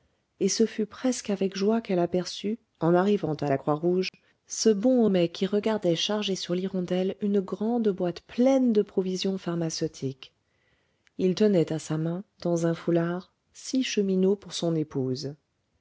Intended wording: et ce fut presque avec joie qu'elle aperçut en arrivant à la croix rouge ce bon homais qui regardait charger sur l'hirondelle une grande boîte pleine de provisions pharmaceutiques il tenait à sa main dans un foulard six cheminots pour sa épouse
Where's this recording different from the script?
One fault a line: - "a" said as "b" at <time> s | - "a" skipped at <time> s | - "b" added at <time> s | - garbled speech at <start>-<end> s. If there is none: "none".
- "sa" said as "son" at 14.5 s